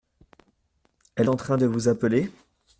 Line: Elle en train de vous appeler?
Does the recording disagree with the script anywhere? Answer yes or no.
no